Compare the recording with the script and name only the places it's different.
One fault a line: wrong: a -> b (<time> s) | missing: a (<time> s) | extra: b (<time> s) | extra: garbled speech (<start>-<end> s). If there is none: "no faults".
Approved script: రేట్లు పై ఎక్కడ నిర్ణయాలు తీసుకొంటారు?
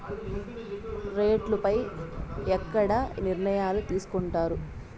no faults